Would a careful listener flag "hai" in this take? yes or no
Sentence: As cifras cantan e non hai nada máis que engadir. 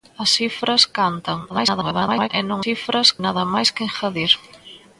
yes